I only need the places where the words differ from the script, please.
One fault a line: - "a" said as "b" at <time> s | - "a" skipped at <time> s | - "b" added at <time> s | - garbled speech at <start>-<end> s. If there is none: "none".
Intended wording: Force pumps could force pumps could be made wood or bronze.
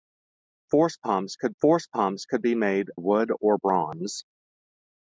none